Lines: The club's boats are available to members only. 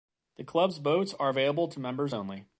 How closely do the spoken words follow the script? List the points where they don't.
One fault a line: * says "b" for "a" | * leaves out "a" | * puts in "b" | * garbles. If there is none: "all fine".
all fine